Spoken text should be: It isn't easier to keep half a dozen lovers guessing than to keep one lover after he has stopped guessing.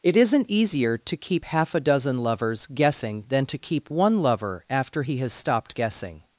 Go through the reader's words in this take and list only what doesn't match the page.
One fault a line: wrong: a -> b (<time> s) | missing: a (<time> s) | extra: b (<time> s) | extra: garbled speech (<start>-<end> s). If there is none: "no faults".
no faults